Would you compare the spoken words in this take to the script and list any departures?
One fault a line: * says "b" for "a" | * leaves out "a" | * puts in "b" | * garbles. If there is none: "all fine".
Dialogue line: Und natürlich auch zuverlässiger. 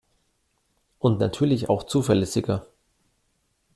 all fine